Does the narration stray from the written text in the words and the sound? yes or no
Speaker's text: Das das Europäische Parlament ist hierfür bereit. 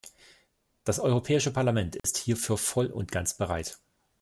yes